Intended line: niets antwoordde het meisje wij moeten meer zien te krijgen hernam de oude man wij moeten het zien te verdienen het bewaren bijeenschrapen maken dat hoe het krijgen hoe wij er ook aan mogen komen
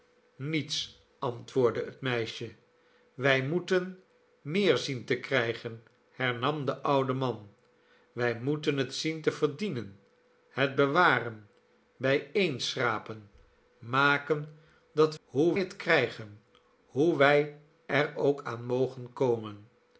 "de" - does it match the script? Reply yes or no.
yes